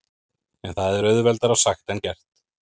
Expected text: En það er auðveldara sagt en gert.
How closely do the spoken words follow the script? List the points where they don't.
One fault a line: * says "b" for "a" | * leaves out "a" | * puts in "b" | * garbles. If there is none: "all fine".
all fine